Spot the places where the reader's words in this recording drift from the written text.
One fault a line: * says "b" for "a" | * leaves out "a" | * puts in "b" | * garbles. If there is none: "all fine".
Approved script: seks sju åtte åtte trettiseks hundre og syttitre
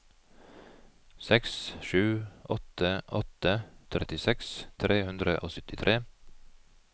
* puts in "tre"